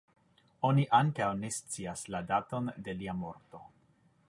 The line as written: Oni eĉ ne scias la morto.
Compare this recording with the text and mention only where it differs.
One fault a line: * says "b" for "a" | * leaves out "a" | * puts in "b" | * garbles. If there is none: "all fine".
* says "ankaŭ" for "eĉ"
* puts in "daton de lia"